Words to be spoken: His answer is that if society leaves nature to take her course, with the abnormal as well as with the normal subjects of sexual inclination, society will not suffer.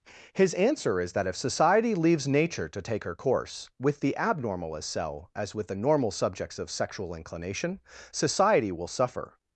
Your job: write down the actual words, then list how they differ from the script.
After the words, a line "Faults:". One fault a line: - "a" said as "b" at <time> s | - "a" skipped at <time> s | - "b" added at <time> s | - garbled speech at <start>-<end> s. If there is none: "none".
His answer is that if society leaves nature to take her course, with the abnormal as cell as with the normal subjects of sexual inclination, society will suffer.
Faults:
- "well" said as "cell" at 4.8 s
- "not" skipped at 8.9 s